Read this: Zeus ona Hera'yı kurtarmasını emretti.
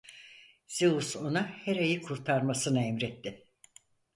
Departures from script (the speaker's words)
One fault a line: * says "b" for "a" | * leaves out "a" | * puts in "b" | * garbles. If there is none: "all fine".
all fine